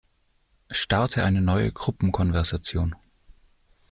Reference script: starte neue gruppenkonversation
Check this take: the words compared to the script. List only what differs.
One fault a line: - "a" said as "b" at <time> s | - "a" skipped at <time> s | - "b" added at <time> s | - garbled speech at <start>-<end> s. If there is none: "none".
- "eine" added at 1.2 s